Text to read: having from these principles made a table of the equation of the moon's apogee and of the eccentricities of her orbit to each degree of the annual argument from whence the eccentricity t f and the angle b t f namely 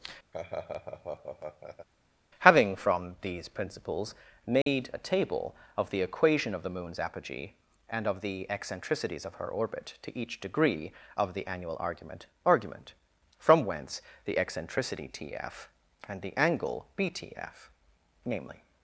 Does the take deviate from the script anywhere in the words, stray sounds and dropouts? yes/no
yes